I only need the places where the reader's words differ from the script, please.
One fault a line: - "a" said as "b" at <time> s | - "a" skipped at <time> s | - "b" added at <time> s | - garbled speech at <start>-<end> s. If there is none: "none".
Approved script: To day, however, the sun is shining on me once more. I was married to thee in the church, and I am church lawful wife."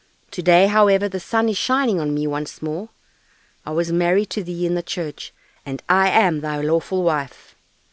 - "church" said as "thy" at 6.4 s